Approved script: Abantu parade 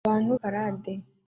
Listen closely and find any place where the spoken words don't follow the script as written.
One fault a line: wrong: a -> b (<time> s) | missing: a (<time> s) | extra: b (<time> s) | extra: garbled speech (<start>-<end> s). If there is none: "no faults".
no faults